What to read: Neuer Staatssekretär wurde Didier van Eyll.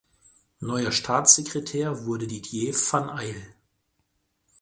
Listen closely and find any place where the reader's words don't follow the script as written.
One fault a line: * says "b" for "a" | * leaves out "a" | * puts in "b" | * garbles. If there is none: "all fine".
all fine